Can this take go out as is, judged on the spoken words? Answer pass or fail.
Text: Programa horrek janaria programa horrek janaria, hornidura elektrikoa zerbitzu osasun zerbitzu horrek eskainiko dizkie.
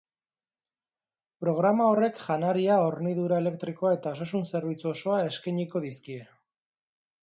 fail